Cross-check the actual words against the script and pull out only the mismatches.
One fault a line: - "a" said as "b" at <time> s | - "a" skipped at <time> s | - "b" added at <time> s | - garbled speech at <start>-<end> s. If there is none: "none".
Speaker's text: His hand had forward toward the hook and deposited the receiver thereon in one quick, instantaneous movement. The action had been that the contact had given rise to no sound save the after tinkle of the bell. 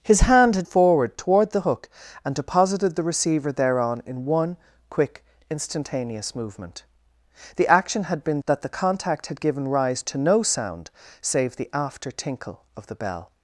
none